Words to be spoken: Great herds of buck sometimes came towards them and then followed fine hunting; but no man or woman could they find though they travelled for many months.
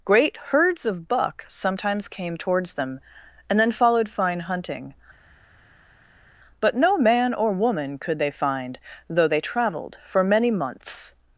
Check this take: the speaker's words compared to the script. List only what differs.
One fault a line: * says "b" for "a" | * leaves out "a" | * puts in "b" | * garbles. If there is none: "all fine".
all fine